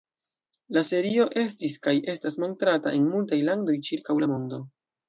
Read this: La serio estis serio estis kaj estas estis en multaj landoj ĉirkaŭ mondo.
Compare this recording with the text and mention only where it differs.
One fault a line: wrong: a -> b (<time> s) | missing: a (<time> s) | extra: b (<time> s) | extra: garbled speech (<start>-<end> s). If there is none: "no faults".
missing: serio estis (1.8 s)
wrong: estis -> montrata (2.5 s)
extra: la (4.2 s)